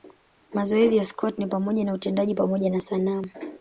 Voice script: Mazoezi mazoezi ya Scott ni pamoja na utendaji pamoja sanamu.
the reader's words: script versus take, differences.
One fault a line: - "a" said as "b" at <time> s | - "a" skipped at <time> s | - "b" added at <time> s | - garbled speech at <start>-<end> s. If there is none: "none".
- "mazoezi" skipped at 1.0 s
- "na" added at 2.7 s